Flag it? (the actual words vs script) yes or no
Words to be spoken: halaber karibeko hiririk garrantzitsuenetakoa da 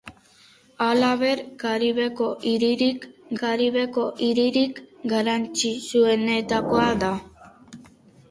yes